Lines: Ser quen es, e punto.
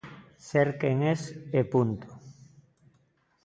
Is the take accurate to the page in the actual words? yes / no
yes